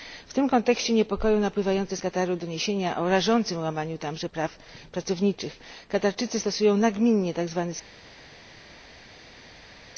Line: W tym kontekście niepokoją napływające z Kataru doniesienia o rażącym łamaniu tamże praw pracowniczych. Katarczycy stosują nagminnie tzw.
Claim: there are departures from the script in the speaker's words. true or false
false